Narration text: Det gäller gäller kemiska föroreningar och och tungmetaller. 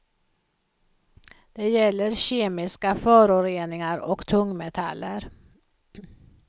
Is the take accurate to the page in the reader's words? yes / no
no